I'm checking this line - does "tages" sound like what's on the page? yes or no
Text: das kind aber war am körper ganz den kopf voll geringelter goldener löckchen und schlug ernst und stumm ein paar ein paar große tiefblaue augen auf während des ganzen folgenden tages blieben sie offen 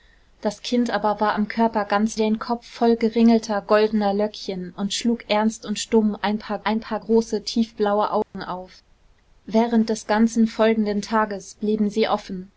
yes